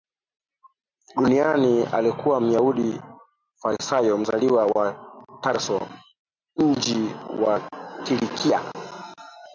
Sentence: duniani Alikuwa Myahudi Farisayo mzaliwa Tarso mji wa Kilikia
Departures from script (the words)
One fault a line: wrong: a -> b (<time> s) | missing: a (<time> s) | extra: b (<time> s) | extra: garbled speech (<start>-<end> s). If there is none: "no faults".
extra: wa (4.7 s)